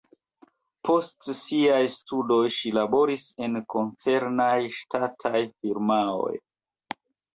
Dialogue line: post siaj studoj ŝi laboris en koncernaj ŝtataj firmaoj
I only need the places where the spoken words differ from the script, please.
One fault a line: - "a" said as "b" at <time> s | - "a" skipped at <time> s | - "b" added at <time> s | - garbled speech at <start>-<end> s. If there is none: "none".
none